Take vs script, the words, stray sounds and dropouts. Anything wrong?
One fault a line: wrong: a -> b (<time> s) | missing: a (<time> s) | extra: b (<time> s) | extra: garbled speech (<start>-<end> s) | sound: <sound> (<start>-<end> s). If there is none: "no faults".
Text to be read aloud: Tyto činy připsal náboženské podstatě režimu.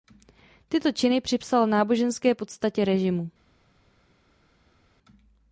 no faults